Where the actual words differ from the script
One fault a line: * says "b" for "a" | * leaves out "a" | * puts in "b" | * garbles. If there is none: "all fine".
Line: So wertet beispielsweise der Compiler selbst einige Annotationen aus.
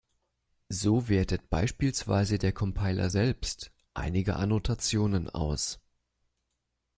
all fine